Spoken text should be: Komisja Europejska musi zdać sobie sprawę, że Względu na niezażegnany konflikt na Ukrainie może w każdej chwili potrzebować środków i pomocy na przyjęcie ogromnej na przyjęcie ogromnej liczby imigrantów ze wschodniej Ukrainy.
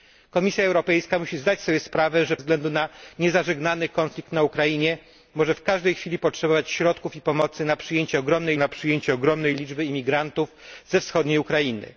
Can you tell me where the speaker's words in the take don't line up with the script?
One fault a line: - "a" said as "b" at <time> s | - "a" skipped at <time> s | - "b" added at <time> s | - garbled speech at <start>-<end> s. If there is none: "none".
none